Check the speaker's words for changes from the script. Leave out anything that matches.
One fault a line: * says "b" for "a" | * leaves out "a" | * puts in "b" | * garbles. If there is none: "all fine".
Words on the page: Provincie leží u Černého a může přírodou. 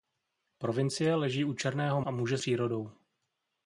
all fine